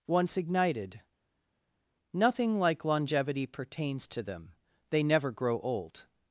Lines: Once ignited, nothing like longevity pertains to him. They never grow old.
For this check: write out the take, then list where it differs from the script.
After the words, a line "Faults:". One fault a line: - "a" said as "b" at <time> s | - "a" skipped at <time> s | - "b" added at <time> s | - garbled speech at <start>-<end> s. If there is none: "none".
Once ignited, nothing like longevity pertains to them. They never grow old.
Faults:
- "him" said as "them" at 4.2 s